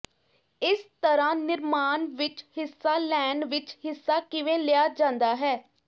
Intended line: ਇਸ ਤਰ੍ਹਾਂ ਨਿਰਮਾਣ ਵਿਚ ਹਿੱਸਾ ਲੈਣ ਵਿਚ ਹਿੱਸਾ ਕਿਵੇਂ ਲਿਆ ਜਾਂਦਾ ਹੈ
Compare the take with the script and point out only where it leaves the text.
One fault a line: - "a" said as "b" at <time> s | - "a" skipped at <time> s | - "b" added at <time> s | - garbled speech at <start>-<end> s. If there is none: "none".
none